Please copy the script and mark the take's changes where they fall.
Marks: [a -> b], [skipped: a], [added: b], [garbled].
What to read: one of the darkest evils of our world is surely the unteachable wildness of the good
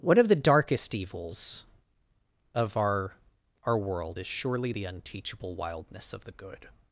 one of the darkest evils of our [added: our] world is surely the unteachable wildness of the good